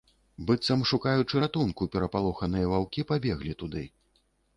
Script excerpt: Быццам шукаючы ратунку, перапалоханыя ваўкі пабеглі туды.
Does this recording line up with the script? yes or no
yes